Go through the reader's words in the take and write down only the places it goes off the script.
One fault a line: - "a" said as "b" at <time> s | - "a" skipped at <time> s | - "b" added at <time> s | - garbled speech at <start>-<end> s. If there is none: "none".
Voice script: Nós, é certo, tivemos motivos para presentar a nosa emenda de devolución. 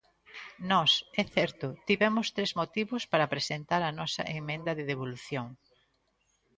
- "tres" added at 2.4 s